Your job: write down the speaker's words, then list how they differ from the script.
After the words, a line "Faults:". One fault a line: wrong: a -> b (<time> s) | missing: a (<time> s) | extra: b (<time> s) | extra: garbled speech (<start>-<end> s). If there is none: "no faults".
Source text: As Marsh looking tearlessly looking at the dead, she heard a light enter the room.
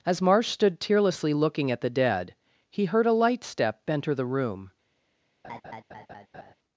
As Marsh stood tearlessly looking at the dead, he heard a light step enter the room.
Faults:
wrong: looking -> stood (0.5 s)
wrong: she -> he (2.7 s)
extra: step (3.4 s)